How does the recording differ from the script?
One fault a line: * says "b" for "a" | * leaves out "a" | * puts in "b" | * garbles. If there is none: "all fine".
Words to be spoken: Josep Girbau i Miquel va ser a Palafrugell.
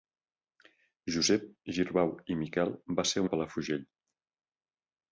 all fine